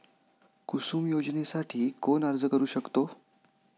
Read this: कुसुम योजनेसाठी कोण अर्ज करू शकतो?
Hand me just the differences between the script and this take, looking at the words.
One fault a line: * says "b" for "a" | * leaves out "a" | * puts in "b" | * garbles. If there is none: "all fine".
all fine